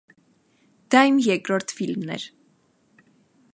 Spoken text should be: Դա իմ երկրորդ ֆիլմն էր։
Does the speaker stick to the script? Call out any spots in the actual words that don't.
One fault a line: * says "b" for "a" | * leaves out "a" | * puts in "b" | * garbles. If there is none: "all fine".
all fine